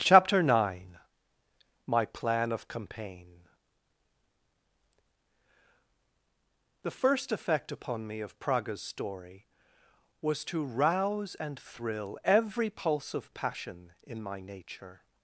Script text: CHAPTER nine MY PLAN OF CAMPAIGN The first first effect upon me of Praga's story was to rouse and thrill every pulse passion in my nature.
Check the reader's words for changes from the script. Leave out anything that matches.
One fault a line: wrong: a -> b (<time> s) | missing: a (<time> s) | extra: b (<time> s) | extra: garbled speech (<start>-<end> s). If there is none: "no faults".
missing: first (7.3 s)
extra: of (13.1 s)